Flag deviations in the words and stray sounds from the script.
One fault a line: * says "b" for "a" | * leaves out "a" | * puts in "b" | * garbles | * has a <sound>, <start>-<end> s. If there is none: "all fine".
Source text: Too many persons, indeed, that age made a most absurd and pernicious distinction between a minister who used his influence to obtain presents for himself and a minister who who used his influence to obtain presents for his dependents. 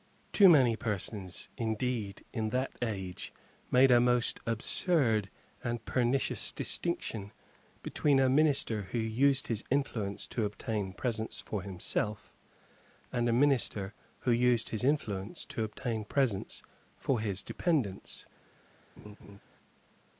* puts in "in"
* leaves out "who"
* has a laugh, 19.0-19.4 s